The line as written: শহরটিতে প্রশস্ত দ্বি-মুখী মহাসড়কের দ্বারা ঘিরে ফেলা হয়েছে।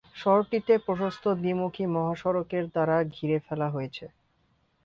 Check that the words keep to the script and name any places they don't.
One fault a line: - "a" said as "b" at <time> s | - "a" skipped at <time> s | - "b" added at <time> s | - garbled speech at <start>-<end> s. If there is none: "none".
none